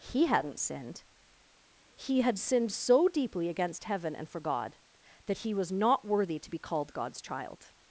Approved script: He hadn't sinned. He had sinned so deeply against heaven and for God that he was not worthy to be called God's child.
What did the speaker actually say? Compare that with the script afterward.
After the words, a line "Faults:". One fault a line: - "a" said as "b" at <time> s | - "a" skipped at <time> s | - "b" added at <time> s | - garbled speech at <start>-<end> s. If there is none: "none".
He hadn't sinned. He had sinned so deeply against heaven and for God that he was not worthy to be called God's child.
Faults:
none